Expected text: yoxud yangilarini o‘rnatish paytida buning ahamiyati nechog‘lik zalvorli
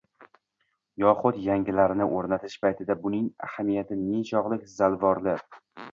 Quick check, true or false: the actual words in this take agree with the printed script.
true